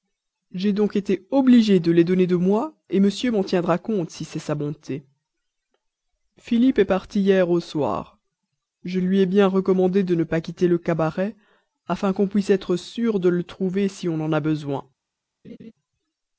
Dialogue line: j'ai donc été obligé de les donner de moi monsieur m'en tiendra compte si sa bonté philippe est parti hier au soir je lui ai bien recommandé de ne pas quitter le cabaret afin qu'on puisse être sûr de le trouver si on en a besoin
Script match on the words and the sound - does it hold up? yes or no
no